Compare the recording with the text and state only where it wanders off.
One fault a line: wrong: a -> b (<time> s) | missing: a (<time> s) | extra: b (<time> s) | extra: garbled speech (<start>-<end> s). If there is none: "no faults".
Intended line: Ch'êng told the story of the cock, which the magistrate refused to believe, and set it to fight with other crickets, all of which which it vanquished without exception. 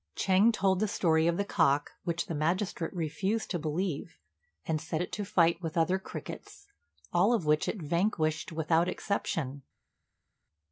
missing: which (7.7 s)